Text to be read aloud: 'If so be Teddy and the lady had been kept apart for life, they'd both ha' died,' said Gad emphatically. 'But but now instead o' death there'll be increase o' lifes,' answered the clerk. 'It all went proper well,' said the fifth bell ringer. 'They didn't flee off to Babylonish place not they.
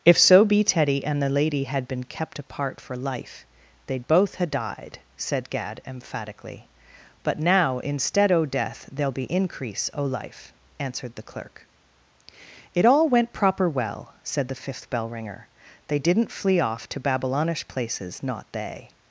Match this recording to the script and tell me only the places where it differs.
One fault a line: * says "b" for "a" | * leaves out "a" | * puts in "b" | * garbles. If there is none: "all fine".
* leaves out "but"
* says "life" for "lifes"
* says "places" for "place"